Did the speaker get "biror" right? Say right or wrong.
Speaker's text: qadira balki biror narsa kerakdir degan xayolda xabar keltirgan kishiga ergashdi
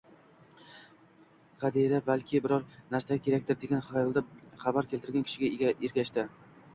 right